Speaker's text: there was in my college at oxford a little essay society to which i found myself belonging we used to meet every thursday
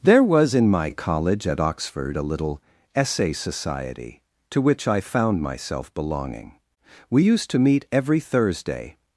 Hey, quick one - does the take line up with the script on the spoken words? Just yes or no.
yes